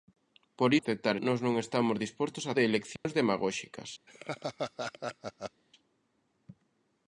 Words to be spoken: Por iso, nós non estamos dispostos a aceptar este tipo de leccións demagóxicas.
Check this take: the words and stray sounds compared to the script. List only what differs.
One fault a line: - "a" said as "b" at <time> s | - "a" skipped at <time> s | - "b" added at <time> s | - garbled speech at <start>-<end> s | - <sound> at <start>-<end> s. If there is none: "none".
- "iso" said as "aceptar" at 0.8 s
- "aceptar este tipo" skipped at 2.5 s
- dropout at 3.0-3.0 s
- laugh at 4.1-5.6 s